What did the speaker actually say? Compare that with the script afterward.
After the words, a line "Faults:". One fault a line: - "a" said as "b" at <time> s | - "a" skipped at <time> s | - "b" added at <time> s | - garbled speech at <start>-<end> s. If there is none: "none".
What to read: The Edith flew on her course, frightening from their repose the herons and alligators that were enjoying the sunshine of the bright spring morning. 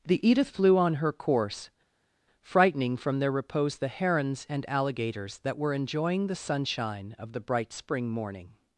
The Edith flew on her course, frightening from their repose the herons and alligators that were enjoying the sunshine of the bright spring morning.
Faults:
none